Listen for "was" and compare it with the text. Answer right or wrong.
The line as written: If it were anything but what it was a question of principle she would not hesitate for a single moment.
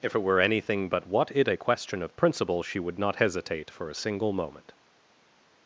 wrong